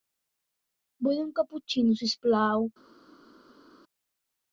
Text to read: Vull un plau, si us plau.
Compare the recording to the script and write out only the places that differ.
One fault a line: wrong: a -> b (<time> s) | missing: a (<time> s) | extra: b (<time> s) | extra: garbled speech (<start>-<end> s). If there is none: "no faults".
wrong: plau -> caputxino (1.4 s)